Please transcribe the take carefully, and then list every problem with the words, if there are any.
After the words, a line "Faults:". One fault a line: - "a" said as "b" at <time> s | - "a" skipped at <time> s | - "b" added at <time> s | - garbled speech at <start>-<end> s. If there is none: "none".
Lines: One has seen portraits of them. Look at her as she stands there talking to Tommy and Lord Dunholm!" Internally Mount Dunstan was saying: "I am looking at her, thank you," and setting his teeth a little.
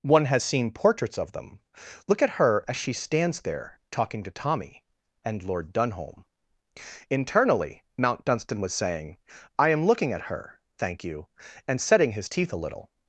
One has seen portraits of them. Look at her as she stands there talking to Tommy and Lord Dunholm!" Internally Mount Dunstan was saying: "I am looking at her, thank you," and setting his teeth a little.
Faults:
none